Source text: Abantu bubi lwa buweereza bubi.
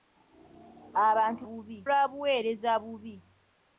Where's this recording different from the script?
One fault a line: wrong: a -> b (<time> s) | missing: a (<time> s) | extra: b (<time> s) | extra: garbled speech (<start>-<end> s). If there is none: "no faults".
no faults